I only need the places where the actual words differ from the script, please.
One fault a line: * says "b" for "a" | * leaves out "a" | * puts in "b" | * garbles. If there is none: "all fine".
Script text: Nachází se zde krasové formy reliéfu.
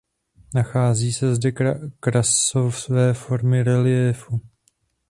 all fine